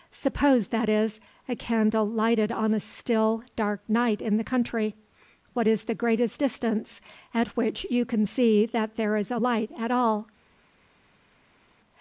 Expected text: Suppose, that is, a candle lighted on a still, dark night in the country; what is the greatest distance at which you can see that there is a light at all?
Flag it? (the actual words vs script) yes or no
no